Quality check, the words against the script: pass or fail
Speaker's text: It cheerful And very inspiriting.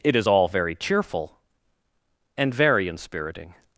fail